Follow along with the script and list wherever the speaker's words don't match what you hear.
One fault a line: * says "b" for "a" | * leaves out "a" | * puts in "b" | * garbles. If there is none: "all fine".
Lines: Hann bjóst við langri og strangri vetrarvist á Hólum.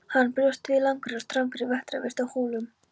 all fine